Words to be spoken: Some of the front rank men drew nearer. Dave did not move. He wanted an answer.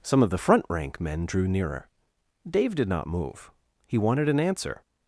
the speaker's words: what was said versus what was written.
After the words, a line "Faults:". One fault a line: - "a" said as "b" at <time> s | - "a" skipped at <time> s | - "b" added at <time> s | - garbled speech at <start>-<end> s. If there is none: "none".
Some of the front rank men drew nearer. Dave did not move. He wanted an answer.
Faults:
none